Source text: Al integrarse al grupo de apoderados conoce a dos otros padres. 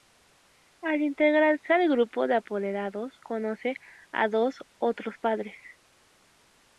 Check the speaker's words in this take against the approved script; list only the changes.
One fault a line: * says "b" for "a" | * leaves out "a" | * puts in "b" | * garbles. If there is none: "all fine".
all fine